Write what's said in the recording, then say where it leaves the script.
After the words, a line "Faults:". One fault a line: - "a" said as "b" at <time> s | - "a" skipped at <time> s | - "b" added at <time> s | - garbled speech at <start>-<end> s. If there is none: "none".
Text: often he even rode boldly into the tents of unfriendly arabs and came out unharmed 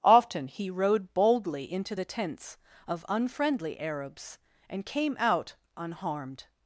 often he rode boldly into the tents of unfriendly arabs and came out unharmed
Faults:
- "even" skipped at 0.7 s